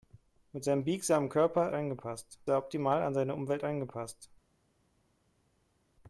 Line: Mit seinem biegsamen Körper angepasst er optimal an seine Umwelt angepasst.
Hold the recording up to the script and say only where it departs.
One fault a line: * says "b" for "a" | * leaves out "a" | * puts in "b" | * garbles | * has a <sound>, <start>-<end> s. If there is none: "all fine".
all fine